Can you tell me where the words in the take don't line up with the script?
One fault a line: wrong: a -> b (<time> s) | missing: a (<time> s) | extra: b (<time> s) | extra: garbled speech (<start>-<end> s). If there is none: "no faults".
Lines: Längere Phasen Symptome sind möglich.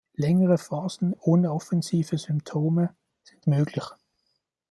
extra: ohne offensive (1.2 s)